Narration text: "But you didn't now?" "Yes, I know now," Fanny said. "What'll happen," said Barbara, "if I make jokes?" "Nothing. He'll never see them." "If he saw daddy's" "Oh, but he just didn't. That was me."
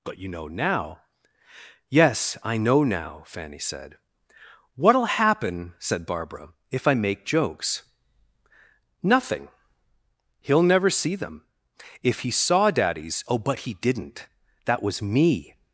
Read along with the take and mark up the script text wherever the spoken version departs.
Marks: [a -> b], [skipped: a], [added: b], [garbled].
"But you [didn't -> know] now?" "Yes, I know now," Fanny said. "What'll happen," said Barbara, "if I make jokes?" "Nothing. He'll never see them." "If he saw daddy's" "Oh, but he [skipped: just] didn't. That was me."